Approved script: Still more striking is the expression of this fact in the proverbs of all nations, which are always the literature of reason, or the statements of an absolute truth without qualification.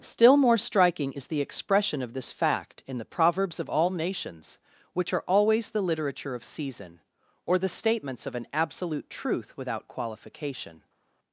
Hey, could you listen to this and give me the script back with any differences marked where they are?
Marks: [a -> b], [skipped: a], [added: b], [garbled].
Still more striking is the expression of this fact in the proverbs of all nations, which are always the literature of [reason, -> season] or the statements of an absolute truth without qualification.